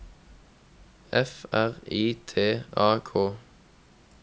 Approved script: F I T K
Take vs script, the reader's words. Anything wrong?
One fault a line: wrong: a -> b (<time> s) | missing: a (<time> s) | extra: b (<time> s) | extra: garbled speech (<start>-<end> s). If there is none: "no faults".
extra: R (1.5 s)
extra: A (2.8 s)